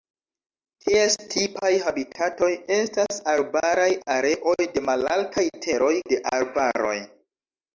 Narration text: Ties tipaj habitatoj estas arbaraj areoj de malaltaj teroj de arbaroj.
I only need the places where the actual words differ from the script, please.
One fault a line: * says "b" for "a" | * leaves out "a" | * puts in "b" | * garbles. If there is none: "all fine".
all fine